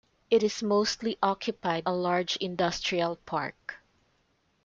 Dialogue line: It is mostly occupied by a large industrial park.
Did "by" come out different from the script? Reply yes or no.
yes